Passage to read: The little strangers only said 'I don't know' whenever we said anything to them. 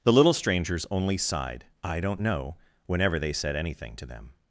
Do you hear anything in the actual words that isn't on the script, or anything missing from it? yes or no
yes